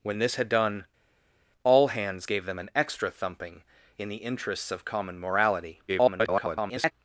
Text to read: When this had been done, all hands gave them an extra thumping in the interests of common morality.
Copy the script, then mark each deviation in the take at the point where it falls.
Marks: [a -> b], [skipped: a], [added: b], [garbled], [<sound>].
When this had [skipped: been] done, all hands gave them an extra thumping in the interests of common morality. [garbled]